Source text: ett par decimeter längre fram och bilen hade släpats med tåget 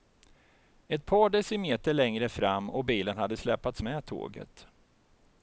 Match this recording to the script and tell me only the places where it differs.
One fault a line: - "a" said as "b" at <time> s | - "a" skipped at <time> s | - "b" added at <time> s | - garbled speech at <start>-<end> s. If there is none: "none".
none